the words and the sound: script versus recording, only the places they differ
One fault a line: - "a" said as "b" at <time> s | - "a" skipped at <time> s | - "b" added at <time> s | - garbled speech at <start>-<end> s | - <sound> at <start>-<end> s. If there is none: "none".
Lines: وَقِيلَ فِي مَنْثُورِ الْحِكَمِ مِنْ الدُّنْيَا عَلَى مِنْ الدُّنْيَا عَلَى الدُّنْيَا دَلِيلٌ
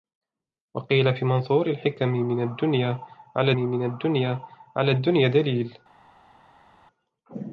none